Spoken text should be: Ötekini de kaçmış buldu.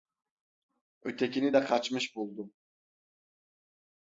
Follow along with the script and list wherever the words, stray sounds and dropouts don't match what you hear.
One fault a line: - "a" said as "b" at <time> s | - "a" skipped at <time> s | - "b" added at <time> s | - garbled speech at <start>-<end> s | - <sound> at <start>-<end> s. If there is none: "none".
none